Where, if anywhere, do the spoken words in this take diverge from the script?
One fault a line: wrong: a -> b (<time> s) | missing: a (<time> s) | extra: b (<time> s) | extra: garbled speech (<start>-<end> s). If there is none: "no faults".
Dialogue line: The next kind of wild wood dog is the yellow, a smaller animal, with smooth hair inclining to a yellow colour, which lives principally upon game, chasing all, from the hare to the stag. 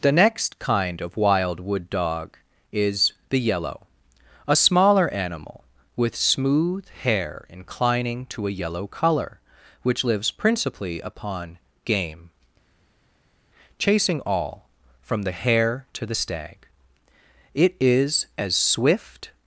extra: It is as swift (17.5 s)